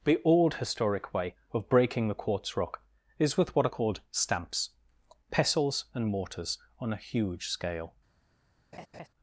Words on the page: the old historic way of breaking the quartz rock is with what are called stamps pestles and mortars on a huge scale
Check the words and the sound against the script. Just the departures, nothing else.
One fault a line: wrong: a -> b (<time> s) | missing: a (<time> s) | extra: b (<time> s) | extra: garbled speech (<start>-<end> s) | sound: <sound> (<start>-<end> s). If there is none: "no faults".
sound: laugh (8.7-9.1 s)